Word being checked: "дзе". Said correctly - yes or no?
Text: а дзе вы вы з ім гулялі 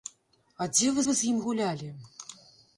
yes